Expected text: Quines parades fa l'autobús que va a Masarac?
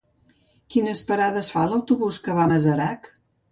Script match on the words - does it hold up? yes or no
yes